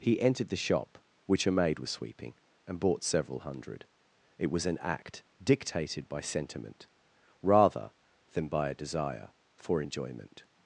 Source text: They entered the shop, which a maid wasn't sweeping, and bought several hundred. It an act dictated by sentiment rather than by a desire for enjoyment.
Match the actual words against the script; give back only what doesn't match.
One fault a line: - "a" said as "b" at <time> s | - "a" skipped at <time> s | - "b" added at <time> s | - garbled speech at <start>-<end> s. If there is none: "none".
- "They" said as "He" at 0.0 s
- "wasn't" said as "was" at 1.8 s
- "was" added at 4.5 s